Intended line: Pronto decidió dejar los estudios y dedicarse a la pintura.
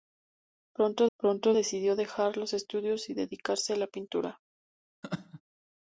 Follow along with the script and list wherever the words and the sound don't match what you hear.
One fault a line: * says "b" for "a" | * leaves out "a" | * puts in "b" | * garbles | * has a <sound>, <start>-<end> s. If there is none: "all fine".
* puts in "pronto"
* has a laugh, 5.0-5.4 s